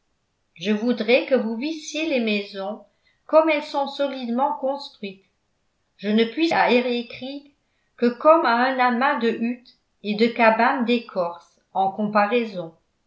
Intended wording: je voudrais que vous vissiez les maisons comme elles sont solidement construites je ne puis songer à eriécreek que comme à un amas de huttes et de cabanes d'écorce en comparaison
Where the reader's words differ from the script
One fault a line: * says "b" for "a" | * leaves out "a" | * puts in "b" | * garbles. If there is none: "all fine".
* leaves out "songer"